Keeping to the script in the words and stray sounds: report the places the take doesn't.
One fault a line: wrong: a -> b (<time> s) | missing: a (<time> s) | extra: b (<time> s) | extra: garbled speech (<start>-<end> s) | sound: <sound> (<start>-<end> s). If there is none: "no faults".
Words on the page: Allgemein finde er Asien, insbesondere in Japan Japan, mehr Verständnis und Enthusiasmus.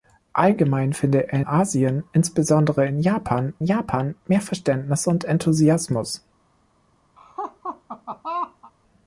sound: laugh (7.2-8.7 s)